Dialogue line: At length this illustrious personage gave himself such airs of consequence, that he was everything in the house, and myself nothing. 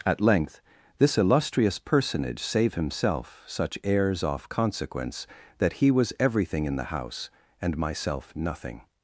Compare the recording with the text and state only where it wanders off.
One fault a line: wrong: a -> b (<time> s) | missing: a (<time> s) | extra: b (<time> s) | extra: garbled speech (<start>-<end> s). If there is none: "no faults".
wrong: gave -> save (2.4 s)
wrong: of -> off (4.2 s)